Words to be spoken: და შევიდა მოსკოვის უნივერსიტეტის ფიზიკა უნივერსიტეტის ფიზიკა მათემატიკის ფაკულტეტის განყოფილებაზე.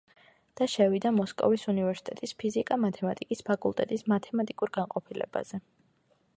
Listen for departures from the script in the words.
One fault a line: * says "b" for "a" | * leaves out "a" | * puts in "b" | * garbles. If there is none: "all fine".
* leaves out "უნივერსიტეტის ფიზიკა"
* puts in "მათემატიკურ"